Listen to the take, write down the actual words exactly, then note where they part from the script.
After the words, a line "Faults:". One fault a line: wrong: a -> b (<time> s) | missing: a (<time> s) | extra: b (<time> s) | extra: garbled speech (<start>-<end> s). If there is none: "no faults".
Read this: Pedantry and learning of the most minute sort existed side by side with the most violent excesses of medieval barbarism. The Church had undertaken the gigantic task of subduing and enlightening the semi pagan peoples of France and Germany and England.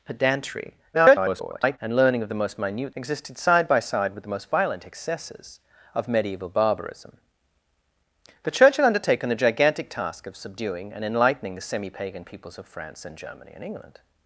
Pedantry [garbled] and learning of the most minute existed side by side with the most violent excesses of medieval barbarism. The Church had undertaken the gigantic task of subduing and enlightening the semi pagan peoples of France and Germany and England.
Faults:
extra: garbled speech (0.9-1.8 s)
missing: sort (3.0 s)